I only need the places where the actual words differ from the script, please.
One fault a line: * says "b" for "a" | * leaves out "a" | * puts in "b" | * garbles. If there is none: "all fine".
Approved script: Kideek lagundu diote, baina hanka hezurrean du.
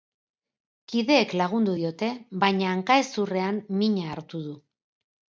* puts in "mina hartu"